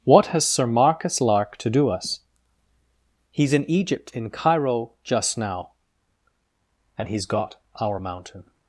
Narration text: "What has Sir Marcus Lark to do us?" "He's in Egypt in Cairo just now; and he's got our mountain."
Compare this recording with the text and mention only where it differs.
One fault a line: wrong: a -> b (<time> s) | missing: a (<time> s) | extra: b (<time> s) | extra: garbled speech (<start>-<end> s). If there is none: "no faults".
no faults